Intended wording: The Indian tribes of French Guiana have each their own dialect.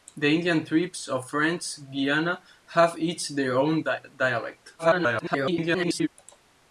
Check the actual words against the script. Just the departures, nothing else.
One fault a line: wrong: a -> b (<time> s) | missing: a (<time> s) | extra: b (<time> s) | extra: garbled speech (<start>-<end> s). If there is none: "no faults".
extra: garbled speech (4.8-6.1 s)